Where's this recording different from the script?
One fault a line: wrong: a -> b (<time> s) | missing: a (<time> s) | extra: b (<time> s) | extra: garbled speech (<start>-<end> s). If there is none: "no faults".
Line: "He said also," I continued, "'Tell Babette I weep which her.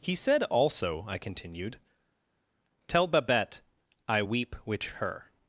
no faults